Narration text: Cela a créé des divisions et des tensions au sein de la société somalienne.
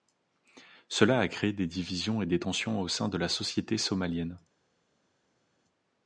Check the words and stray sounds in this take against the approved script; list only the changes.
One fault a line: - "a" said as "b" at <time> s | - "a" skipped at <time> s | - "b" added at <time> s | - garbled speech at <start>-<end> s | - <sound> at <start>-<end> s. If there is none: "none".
none